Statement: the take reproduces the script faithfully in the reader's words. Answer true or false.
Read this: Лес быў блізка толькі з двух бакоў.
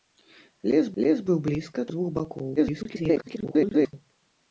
false